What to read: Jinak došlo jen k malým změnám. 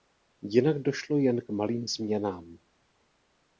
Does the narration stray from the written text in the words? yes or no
no